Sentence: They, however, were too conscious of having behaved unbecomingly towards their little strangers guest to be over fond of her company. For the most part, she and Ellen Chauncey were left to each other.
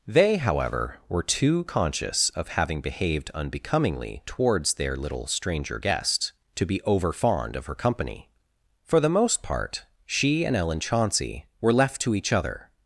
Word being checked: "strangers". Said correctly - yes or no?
no